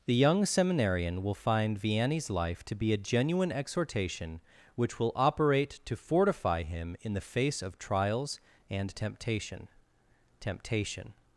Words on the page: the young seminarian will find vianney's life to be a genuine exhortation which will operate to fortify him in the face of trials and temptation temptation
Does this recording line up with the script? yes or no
yes